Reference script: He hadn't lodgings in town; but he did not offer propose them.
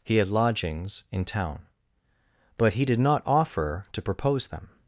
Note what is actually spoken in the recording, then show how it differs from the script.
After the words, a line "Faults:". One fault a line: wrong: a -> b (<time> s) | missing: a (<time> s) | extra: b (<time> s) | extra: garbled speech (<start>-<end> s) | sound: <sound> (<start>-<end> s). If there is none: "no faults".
He had lodgings in town; but he did not offer to propose them.
Faults:
wrong: hadn't -> had (0.2 s)
extra: to (3.9 s)